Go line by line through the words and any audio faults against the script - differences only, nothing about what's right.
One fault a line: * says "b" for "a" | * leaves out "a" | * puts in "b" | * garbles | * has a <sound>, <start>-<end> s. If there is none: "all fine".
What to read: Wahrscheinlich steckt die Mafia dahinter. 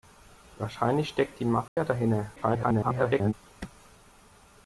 * has a dropout, 1.7-1.8 s
* garbles